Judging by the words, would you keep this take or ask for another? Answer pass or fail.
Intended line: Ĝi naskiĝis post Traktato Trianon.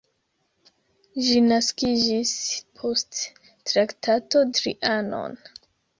pass